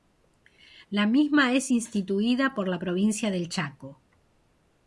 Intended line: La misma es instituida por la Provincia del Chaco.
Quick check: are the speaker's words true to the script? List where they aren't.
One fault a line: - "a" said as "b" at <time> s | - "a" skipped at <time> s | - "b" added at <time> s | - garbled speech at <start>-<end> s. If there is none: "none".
none